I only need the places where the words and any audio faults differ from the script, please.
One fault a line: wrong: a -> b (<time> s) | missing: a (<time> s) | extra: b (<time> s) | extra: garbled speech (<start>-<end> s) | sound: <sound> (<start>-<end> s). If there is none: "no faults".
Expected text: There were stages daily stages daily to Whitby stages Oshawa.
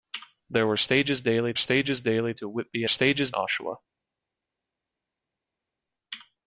no faults